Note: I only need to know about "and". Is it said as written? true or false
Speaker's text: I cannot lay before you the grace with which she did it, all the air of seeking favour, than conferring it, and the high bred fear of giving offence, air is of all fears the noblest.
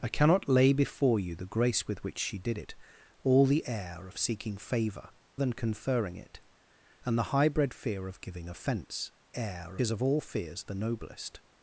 true